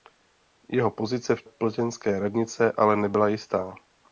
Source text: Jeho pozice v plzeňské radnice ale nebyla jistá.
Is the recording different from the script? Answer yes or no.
no